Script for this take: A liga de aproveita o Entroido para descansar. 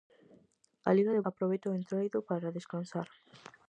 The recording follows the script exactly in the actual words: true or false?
true